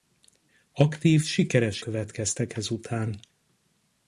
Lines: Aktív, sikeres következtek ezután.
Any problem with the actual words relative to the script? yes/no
no